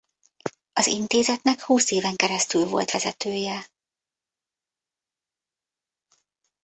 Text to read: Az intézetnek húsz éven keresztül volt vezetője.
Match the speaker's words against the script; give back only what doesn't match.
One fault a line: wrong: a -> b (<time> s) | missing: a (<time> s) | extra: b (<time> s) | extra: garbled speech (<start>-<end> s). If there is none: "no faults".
no faults